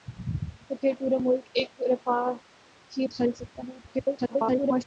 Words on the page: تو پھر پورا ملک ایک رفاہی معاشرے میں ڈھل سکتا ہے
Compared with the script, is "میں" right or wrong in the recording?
wrong